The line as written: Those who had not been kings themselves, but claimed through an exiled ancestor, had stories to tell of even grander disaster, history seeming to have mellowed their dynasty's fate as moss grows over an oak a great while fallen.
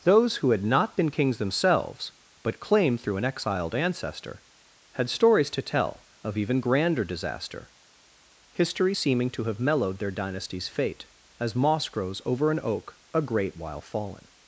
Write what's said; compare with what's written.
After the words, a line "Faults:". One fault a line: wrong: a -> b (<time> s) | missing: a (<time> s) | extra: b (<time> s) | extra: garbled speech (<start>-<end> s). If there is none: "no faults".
Those who had not been kings themselves, but claimed through an exiled ancestor, had stories to tell of even grander disaster, history seeming to have mellowed their dynasty's fate as moss grows over an oak a great while fallen.
Faults:
no faults